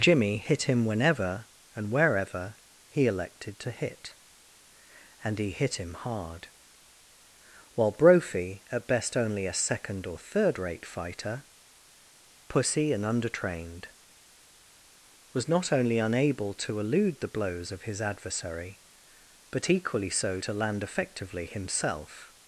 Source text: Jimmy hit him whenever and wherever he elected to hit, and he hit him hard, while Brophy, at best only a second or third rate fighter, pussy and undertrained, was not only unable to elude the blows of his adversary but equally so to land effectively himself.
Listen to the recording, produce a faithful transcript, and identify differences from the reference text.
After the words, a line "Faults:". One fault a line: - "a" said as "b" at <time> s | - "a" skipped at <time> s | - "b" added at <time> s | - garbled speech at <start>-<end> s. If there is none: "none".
Jimmy hit him whenever and wherever he elected to hit, and he hit him hard, while Brophy, at best only a second or third rate fighter, pussy and undertrained, was not only unable to elude the blows of his adversary but equally so to land effectively himself.
Faults:
none